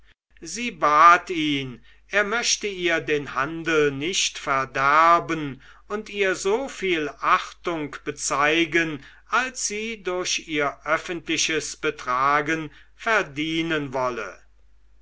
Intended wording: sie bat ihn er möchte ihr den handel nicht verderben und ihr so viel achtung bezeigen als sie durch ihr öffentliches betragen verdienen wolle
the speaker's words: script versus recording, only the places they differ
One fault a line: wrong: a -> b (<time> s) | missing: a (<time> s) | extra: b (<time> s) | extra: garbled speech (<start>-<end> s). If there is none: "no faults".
no faults